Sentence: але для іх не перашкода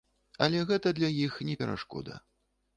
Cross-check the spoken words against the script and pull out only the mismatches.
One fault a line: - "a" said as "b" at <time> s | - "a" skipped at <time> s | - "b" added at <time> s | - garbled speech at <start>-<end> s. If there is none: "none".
- "гэта" added at 0.7 s